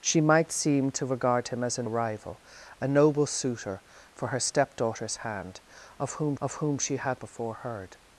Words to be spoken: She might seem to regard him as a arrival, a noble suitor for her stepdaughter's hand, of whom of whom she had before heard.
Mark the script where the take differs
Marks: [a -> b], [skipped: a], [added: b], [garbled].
She might seem to regard him as a arrival, a noble suitor for her stepdaughter's hand, of whom of whom she had before heard.